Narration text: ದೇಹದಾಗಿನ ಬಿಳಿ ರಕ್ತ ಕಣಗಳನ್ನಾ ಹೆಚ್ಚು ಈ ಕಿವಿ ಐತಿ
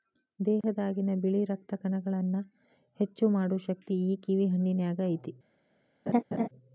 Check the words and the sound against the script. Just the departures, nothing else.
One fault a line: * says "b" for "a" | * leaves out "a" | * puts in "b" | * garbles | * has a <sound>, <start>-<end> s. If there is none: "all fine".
* has a dropout, 0.6-0.6 s
* puts in "ಮಾಡು ಶಕ್ತಿ"
* puts in "ಹಣ್ಣಿನ್ಯಾಗ"
* has a laugh, 6.1-6.5 s